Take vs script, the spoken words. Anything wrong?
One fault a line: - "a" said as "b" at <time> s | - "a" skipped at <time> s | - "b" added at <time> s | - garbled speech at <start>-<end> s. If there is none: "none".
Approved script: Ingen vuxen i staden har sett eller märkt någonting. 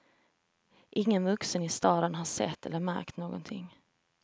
none